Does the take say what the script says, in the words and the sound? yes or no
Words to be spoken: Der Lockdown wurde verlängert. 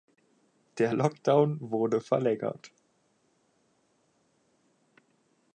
yes